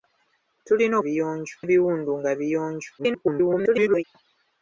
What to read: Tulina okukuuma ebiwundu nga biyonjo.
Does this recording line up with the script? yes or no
no